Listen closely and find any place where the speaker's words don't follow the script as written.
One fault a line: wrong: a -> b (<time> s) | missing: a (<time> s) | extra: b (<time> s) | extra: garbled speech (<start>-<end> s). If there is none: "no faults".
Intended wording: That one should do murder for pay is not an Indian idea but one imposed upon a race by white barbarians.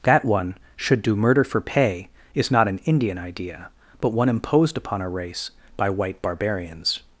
no faults